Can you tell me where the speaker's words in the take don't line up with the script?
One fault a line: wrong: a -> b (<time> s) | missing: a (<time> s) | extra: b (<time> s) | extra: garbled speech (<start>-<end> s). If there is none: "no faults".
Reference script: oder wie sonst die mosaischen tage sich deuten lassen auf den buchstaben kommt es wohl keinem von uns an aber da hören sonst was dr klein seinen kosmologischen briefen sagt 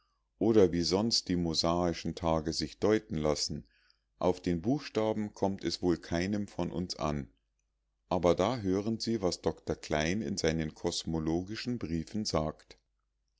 wrong: sonst -> sie (9.0 s)
extra: in (10.2 s)